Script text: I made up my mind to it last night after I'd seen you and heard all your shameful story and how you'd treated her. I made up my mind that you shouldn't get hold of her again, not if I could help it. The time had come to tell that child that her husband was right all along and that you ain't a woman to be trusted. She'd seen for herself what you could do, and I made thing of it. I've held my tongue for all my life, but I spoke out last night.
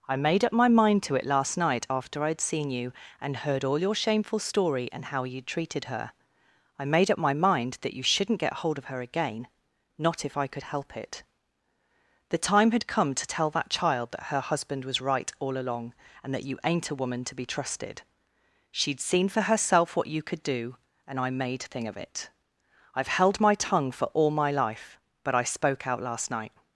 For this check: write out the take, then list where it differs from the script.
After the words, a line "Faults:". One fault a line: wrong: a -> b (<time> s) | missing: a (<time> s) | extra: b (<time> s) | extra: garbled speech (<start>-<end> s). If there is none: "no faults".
I made up my mind to it last night after I'd seen you and heard all your shameful story and how you'd treated her. I made up my mind that you shouldn't get hold of her again, not if I could help it. The time had come to tell that child that her husband was right all along and that you ain't a woman to be trusted. She'd seen for herself what you could do, and I made thing of it. I've held my tongue for all my life, but I spoke out last night.
Faults:
no faults